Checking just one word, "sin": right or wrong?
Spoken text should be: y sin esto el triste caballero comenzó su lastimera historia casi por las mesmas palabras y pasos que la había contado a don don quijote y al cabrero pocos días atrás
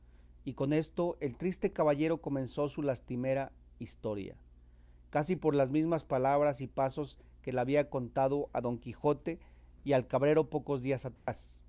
wrong